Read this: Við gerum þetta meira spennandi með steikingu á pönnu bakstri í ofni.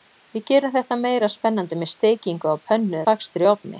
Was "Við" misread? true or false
false